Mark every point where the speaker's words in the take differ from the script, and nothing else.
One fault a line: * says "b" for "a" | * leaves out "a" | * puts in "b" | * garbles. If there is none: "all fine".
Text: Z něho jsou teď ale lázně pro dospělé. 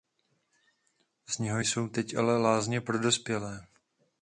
all fine